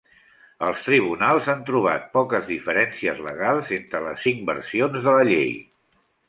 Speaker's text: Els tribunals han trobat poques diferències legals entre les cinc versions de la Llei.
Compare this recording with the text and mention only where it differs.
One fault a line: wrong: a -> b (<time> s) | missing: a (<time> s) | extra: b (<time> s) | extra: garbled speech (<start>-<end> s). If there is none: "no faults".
no faults